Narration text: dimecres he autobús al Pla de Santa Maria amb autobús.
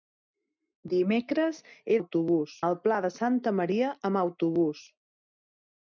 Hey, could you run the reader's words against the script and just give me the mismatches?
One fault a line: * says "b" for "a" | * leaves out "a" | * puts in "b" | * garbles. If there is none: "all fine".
all fine